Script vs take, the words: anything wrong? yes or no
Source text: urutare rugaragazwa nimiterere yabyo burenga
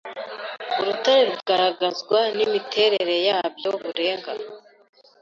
no